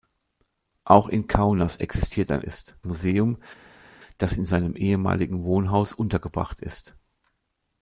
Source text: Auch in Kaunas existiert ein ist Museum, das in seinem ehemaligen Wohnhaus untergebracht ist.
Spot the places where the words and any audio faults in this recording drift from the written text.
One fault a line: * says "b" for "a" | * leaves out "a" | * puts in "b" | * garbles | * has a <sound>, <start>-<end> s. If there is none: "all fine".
all fine